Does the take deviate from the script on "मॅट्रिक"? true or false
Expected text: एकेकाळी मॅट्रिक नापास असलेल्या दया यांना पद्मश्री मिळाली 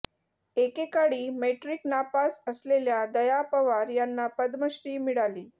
false